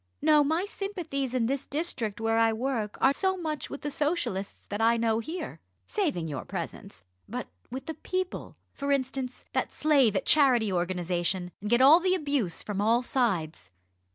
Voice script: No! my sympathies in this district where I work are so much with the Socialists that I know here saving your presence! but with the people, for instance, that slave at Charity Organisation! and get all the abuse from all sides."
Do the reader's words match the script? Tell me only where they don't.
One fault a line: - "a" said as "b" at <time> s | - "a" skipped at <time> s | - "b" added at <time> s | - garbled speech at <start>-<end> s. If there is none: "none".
none